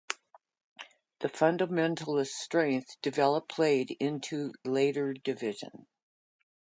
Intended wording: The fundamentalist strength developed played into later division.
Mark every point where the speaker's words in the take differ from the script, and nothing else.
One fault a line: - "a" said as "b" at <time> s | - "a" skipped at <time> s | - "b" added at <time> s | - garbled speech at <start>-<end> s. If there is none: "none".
none